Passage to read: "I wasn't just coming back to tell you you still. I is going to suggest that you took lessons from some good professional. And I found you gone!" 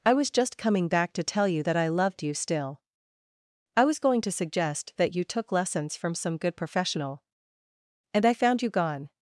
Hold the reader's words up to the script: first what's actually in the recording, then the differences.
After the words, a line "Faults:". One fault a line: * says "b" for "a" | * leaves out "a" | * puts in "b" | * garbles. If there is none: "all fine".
"I was just coming back to tell you that I loved you still. I was going to suggest that you took lessons from some good professional. And I found you gone!"
Faults:
* says "was" for "wasn't"
* puts in "that I loved"
* says "was" for "is"